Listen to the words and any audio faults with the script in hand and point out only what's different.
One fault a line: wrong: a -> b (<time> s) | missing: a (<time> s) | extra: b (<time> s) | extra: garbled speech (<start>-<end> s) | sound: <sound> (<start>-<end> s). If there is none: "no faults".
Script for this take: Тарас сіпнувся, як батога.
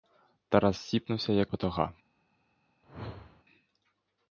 sound: whoosh (2.8-3.4 s)